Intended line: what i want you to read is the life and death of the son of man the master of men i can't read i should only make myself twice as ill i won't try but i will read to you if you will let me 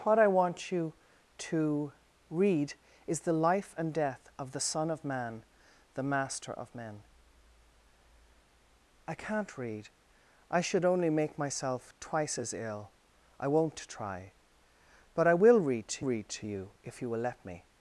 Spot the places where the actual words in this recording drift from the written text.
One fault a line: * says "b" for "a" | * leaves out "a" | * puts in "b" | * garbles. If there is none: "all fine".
* puts in "read to"